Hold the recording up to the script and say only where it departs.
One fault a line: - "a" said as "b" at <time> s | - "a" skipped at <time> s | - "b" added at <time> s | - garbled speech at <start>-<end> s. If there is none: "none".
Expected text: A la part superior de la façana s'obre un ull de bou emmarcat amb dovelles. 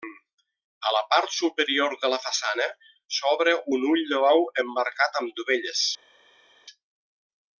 none